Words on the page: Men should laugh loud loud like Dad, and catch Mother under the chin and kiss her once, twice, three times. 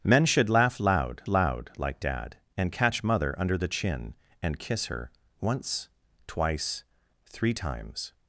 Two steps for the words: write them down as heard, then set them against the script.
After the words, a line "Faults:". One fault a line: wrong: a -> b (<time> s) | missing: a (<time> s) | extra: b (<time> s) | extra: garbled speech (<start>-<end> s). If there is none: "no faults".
Men should laugh loud loud like Dad, and catch Mother under the chin and kiss her once, twice, three times.
Faults:
no faults